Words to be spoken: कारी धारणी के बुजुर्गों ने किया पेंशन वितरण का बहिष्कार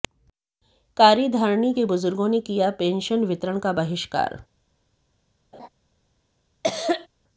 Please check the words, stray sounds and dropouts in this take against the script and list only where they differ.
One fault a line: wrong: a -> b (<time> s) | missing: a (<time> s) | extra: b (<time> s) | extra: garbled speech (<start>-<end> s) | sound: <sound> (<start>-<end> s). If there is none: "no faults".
sound: laugh (5.5-5.7 s)
sound: cough (6.6-7.1 s)